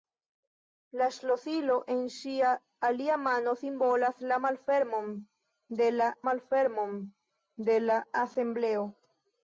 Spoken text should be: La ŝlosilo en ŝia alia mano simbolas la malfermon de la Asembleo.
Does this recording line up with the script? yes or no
no